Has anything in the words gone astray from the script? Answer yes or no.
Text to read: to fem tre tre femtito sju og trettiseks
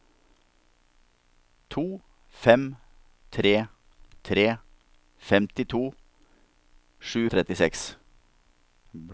no